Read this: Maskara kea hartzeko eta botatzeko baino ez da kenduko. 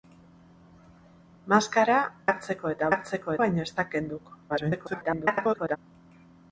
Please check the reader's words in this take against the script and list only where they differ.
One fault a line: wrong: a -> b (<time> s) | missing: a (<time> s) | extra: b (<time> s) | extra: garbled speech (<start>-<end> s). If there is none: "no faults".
missing: kea (2.0 s)
wrong: botatzeko -> hartzeko (2.9 s)
extra: garbled speech (4.5-5.8 s)